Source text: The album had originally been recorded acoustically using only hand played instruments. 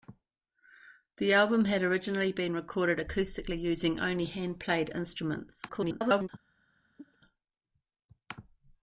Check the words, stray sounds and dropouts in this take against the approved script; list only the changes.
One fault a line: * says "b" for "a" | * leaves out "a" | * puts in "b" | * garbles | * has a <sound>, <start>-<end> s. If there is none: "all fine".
* garbles
* has a cough, 7.0-7.2 s